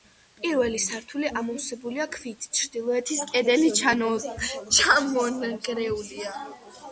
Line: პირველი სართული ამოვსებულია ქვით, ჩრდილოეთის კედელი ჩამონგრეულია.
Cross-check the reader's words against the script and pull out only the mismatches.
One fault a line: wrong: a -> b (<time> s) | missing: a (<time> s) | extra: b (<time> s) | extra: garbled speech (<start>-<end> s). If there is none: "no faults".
no faults